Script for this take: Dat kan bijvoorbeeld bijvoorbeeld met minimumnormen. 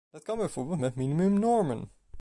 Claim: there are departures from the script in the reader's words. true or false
true